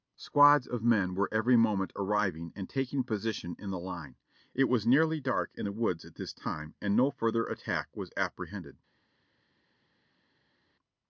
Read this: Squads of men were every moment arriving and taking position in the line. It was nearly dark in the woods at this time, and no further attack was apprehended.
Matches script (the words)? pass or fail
pass